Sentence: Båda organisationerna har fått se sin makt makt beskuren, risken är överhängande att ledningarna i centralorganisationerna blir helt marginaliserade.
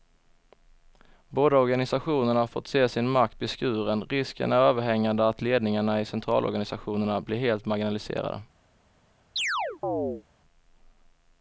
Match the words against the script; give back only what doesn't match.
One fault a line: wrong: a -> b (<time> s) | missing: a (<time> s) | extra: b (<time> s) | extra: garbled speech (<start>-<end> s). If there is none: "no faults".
missing: makt (3.4 s)